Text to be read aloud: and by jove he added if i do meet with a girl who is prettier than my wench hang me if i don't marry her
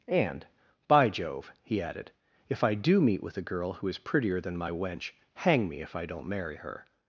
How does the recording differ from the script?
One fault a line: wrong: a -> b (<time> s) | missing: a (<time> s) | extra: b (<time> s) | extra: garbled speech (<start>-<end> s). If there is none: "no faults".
no faults